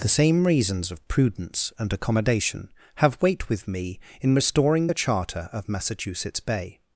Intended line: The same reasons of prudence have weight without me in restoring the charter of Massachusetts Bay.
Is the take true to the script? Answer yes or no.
no